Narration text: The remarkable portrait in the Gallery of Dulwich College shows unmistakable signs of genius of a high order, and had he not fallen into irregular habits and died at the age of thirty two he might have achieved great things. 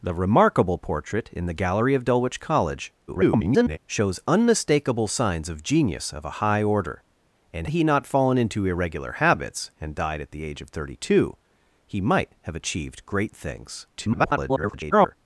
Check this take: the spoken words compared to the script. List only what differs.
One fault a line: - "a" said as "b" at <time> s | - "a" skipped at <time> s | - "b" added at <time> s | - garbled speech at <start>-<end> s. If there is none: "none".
- garbled speech at 3.1-3.8 s
- "had" skipped at 7.7 s
- garbled speech at 13.9-15.2 s